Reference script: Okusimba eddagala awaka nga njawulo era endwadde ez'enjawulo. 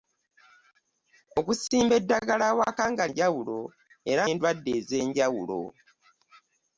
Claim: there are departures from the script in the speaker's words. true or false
false